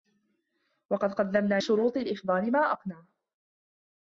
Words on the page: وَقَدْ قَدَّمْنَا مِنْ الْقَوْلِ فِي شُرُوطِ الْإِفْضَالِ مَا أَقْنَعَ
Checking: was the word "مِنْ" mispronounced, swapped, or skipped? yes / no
yes